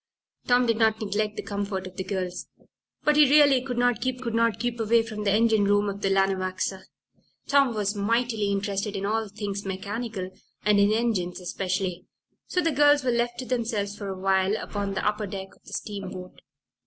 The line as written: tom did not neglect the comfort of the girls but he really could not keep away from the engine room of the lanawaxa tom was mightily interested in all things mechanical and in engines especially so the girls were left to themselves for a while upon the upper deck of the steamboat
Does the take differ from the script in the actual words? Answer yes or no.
yes